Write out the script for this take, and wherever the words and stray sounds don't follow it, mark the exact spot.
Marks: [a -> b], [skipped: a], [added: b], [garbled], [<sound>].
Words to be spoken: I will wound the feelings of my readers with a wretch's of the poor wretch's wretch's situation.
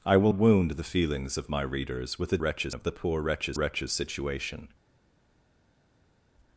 I will wound the feelings of my readers with a wretch's of the poor wretch's wretch's situation.